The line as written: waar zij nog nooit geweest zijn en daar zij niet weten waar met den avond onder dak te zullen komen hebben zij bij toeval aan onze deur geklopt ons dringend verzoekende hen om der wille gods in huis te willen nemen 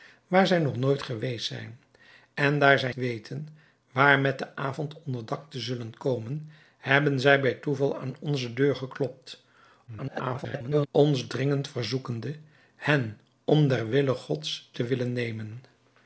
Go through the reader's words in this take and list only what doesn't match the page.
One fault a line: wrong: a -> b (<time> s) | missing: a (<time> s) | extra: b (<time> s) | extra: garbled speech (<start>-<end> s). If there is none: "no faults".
missing: niet (2.9 s)
extra: garbled speech (9.9-10.9 s)
missing: in huis (14.7 s)